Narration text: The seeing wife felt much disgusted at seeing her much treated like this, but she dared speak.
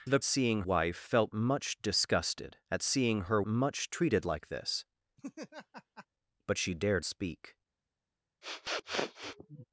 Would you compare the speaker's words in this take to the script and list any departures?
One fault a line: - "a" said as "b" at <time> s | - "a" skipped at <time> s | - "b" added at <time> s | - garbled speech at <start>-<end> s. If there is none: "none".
none